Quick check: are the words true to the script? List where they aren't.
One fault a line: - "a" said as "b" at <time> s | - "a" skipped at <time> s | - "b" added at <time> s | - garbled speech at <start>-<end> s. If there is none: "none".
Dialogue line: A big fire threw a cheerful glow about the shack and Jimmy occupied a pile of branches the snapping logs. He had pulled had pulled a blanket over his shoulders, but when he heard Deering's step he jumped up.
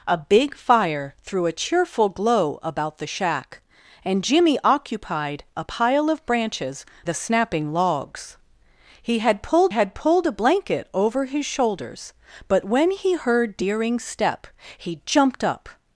none